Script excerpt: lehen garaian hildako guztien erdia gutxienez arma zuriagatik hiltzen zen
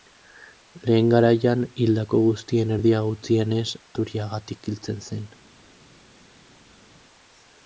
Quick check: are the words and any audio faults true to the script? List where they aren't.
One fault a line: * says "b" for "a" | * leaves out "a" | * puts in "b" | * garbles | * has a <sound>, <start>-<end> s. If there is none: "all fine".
* leaves out "arma"